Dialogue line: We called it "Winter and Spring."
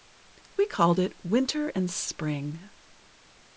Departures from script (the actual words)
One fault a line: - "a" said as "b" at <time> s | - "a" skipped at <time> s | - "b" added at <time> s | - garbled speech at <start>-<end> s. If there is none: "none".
none